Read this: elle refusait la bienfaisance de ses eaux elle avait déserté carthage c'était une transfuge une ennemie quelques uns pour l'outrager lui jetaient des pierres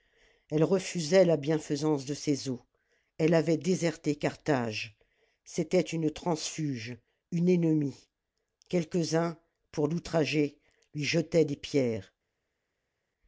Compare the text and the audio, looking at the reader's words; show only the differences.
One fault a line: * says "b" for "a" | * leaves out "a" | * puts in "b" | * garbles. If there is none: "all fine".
all fine